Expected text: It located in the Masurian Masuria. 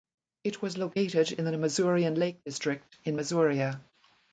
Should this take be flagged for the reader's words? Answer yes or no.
yes